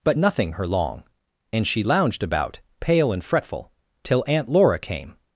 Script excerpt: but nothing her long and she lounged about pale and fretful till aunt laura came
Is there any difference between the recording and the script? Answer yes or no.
no